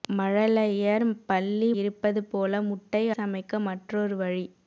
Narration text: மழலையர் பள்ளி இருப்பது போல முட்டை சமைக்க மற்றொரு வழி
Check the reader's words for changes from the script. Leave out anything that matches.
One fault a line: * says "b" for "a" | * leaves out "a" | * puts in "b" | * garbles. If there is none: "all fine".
all fine